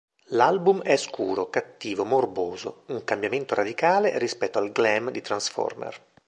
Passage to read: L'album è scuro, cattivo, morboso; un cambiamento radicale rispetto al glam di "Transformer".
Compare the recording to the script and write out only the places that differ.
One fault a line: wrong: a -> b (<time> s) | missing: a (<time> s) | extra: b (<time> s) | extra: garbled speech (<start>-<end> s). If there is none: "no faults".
no faults